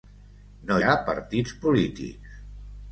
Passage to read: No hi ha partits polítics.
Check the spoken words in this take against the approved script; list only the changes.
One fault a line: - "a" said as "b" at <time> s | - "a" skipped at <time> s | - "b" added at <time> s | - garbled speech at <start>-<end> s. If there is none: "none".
- "hi" skipped at 0.8 s